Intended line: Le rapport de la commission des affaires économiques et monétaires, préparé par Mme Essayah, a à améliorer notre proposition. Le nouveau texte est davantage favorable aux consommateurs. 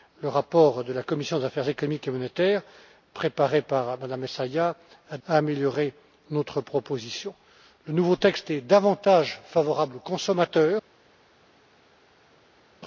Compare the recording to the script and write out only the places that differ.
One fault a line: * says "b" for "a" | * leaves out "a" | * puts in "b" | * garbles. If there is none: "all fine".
all fine